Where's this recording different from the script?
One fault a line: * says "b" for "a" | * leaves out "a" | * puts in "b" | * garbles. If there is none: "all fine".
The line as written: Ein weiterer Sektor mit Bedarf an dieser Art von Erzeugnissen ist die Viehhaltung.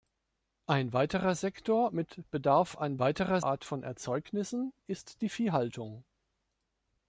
* says "weiterer" for "dieser"